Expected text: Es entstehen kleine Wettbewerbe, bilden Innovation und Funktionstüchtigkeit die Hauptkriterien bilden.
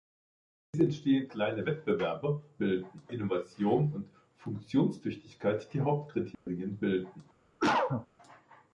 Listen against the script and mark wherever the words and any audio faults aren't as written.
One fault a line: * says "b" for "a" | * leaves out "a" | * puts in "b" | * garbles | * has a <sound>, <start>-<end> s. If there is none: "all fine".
* has a dropout, 6.3-6.5 s
* has a cough, 7.6-8.1 s